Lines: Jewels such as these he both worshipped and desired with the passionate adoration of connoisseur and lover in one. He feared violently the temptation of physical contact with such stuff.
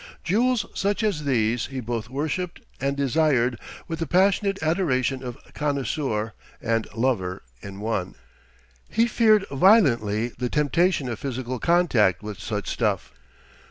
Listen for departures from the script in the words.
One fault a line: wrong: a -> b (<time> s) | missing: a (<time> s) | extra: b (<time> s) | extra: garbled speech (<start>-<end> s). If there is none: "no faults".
no faults